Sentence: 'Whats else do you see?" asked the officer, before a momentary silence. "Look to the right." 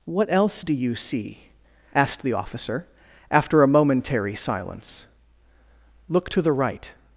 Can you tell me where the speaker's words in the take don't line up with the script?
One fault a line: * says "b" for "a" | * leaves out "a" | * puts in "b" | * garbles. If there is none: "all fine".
* says "What" for "Whats"
* says "after" for "before"